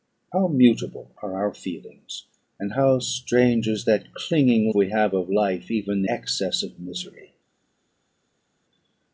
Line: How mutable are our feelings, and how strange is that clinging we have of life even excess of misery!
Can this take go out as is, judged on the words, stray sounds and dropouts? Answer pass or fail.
pass